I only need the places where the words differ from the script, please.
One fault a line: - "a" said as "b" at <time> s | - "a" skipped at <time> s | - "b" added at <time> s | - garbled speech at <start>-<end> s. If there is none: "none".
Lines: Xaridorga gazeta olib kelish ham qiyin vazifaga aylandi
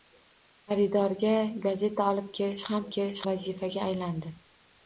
- "qiyin" said as "kelish" at 3.0 s